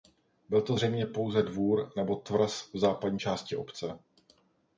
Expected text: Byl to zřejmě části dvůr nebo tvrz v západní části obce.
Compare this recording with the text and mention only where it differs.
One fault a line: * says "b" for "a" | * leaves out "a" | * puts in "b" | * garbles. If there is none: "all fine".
* says "pouze" for "části"